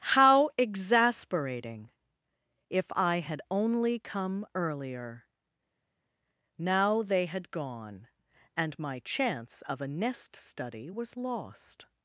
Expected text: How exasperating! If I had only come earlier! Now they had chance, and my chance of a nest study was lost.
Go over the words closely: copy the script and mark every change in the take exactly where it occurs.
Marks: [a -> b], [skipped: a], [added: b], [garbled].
How exasperating! If I had only come earlier! Now they had [chance, -> gone] and my chance of a nest study was lost.